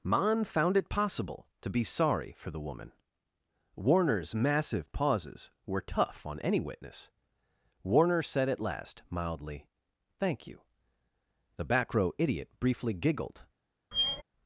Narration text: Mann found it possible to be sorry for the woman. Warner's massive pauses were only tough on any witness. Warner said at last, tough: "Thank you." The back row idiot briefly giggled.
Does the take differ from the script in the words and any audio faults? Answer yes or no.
yes